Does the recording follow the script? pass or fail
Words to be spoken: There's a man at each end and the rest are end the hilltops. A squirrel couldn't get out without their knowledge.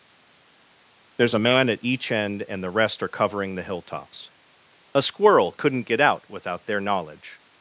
fail